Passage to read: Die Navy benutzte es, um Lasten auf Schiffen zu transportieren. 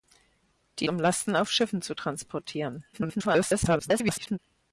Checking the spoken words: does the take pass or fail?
fail